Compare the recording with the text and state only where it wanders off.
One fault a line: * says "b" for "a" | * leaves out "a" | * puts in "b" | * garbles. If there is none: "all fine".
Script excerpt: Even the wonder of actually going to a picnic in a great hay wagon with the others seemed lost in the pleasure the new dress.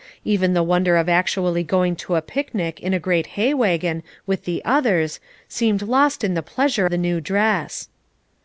all fine